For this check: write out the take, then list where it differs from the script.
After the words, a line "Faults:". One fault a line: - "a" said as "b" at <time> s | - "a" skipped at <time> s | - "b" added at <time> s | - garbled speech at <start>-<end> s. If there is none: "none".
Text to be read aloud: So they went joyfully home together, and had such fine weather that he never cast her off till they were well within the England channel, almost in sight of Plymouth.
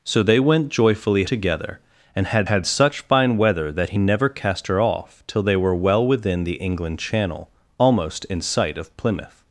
So they went joyfully together, and had had such fine weather that he never cast her off till they were well within the England channel, almost in sight of Plymouth.
Faults:
- "home" skipped at 1.2 s
- "had" added at 2.4 s